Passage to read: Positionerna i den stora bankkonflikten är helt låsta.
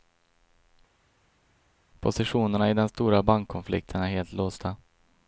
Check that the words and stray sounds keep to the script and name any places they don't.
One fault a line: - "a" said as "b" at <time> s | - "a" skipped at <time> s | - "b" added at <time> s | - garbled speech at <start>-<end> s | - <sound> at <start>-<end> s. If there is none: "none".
none